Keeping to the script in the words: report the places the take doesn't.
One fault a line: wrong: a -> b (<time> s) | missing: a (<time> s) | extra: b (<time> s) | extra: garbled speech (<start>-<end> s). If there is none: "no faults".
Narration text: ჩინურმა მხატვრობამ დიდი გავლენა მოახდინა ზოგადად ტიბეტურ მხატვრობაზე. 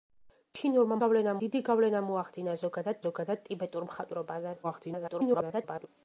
wrong: მხატვრობამ -> გავლენა (1.0 s)
extra: ზოგადად (3.0 s)
extra: garbled speech (4.6-5.9 s)